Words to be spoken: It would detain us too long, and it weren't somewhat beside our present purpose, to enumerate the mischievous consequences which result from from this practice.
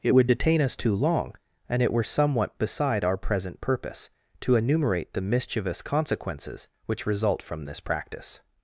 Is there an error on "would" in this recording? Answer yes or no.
no